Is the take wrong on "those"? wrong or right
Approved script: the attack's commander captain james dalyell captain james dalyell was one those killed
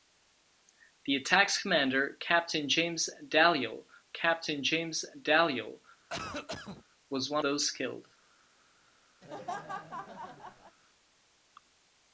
right